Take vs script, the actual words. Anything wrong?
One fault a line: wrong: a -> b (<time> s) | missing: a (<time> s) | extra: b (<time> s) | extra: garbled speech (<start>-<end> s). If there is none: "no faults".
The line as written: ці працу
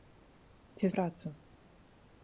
no faults